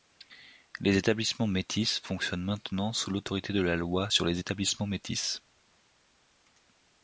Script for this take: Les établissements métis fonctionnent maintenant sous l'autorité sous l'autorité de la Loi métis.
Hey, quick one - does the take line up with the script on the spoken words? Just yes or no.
no